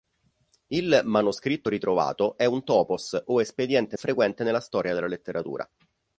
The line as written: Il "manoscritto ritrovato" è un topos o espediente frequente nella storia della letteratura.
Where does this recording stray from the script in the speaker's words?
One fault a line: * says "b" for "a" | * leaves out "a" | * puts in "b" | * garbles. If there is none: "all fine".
all fine